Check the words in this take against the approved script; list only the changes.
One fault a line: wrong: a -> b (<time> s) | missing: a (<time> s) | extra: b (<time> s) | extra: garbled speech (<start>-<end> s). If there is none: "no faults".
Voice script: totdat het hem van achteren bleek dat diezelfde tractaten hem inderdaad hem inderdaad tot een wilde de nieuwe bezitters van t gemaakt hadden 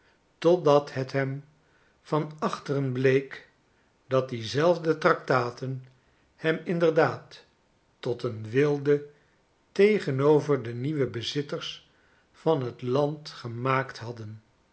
missing: hem inderdaad (7.5 s)
extra: tegenover (9.7 s)
extra: land (12.8 s)